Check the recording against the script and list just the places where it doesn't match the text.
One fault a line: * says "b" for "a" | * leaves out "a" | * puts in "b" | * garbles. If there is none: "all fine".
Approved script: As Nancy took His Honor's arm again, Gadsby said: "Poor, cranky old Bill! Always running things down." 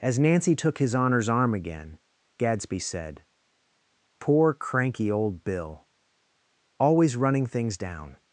all fine